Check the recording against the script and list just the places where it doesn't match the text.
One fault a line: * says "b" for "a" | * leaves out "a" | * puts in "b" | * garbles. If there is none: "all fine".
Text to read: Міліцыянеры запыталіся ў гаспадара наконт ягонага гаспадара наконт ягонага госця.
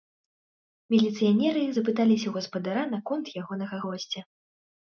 * leaves out "гаспадара наконт ягонага"